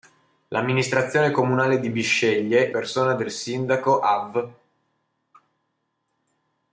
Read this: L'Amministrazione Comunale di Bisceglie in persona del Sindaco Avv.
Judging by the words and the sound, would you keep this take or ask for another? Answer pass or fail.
fail